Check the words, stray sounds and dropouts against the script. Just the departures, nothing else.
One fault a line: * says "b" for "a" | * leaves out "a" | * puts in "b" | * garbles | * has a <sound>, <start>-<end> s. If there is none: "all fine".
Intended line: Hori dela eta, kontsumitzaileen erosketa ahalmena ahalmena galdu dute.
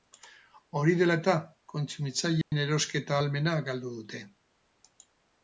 * has a dropout, 2.4-2.5 s
* leaves out "ahalmena"